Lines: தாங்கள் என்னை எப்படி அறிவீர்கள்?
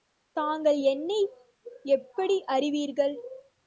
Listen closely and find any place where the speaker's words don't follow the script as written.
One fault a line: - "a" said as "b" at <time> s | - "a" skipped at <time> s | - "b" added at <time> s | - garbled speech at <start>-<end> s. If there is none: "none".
none